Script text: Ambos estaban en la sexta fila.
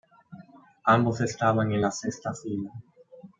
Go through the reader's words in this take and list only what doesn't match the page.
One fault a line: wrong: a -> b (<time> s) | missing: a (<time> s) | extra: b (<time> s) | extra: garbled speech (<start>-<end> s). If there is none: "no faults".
no faults